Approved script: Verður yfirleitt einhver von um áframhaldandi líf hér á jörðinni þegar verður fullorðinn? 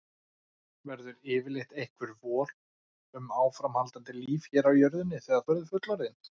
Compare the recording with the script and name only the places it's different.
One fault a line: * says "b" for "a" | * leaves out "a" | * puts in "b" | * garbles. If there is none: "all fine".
all fine